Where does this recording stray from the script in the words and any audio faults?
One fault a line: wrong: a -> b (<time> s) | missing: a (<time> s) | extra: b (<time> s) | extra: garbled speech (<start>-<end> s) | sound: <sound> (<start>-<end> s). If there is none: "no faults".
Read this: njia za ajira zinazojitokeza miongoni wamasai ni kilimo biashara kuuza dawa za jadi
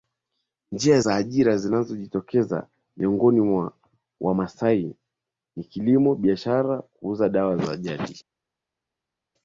extra: mwa (3.4 s)